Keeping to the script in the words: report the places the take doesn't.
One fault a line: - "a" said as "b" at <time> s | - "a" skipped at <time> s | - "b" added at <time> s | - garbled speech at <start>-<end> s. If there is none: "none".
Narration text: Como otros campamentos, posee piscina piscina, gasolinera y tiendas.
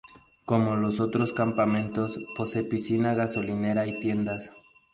- "los" added at 0.8 s
- "piscina" skipped at 3.1 s